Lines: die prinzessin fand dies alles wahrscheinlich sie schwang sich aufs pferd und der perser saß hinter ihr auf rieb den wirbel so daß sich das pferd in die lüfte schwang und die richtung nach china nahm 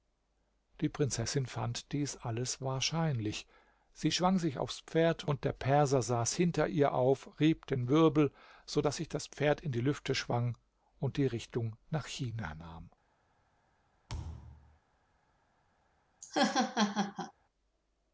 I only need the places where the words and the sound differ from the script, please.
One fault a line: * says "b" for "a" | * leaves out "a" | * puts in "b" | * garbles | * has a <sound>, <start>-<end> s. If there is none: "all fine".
* has a thud, 14.1-14.8 s
* has a laugh, 16.2-17.3 s